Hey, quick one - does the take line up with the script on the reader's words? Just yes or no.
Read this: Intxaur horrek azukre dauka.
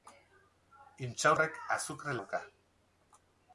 yes